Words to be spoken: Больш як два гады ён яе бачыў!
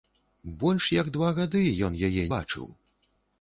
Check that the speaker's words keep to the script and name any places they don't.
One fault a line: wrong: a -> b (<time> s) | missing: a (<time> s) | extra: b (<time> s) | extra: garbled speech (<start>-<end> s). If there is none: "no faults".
no faults